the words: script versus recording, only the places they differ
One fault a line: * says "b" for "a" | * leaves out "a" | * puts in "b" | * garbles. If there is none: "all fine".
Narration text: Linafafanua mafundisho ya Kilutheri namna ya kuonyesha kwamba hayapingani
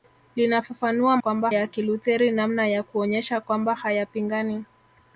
* says "kwamba" for "mafundisho"